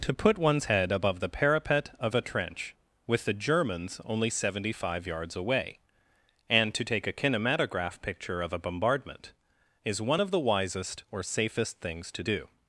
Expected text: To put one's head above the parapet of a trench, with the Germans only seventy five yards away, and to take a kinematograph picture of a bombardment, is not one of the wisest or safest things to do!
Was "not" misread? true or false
true